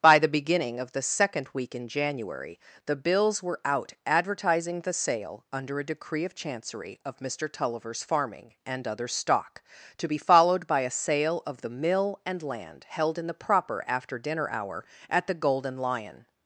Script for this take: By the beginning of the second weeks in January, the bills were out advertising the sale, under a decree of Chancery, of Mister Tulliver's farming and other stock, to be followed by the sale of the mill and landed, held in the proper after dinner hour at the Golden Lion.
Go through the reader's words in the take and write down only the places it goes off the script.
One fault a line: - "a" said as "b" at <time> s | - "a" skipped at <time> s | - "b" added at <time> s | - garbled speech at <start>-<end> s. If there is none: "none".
- "weeks" said as "week" at 1.5 s
- "the" said as "a" at 10.8 s
- "landed" said as "land" at 12.4 s